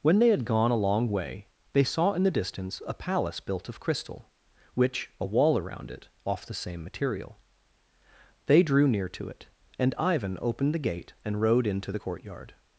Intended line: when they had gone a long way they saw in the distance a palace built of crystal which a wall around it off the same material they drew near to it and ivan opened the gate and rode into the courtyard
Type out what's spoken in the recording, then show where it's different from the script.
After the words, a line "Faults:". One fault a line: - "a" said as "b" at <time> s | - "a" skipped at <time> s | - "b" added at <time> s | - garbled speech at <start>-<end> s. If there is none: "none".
when they had gone a long way they saw in the distance a palace built of crystal which a wall around it off the same material they drew near to it and ivan opened the gate and rode into the courtyard
Faults:
none